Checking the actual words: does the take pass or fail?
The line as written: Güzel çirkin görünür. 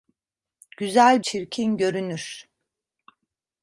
pass